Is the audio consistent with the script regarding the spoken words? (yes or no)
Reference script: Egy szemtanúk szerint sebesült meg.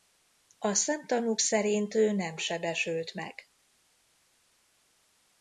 no